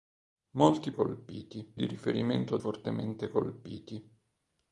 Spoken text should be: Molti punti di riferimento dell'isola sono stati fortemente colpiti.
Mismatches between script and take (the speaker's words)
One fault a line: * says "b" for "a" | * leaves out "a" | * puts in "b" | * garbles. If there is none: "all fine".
* says "colpiti" for "punti"
* leaves out "dell'isola sono stati"